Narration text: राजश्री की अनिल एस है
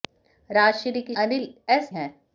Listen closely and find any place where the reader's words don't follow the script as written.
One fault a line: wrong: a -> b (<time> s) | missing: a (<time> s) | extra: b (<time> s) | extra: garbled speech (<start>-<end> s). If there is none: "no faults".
no faults